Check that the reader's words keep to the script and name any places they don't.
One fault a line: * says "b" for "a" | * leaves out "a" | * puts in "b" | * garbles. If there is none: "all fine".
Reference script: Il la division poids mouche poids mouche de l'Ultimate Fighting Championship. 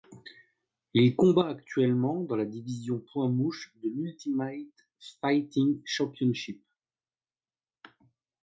* puts in "combat actuellement dans"
* leaves out "poids mouche"